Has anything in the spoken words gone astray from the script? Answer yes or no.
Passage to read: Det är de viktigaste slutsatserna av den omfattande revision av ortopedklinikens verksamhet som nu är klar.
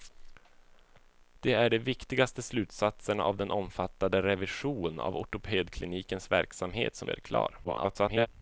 yes